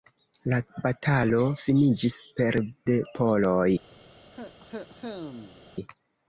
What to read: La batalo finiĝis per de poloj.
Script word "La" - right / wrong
right